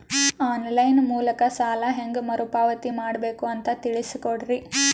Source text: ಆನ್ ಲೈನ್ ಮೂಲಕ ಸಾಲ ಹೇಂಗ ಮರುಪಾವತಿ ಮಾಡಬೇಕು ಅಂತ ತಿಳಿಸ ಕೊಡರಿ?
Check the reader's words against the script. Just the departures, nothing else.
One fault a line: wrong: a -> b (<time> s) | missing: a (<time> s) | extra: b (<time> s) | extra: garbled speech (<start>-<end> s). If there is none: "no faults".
no faults